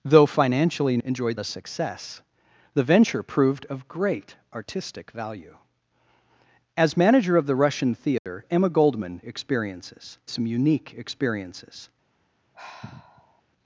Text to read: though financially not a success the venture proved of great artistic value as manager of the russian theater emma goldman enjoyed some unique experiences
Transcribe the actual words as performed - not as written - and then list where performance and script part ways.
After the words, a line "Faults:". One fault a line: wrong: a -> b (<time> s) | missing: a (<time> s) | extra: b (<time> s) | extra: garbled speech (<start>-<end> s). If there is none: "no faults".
though financially enjoyed a success the venture proved of great artistic value as manager of the russian theater emma goldman experiences some unique experiences
Faults:
wrong: not -> enjoyed (1.0 s)
wrong: enjoyed -> experiences (9.3 s)